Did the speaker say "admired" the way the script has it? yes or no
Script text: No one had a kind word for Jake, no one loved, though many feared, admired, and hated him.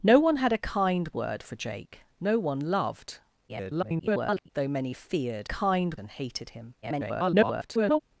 no